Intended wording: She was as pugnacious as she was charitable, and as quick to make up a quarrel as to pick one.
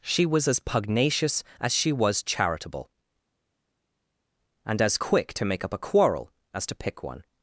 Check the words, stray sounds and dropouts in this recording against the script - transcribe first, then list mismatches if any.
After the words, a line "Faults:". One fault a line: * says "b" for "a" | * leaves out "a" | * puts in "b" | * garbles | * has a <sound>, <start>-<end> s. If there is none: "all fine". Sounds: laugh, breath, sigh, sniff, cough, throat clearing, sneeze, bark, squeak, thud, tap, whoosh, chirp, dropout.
She was as pugnacious as she was charitable, and as quick to make up a quarrel as to pick one.
Faults:
all fine